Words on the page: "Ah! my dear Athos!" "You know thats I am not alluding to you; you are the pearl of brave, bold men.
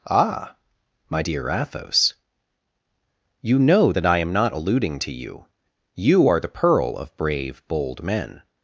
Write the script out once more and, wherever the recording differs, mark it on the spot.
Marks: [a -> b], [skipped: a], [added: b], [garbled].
"Ah! my dear Athos!" "You know [thats -> that] I am not alluding to you; you are the pearl of brave, bold men.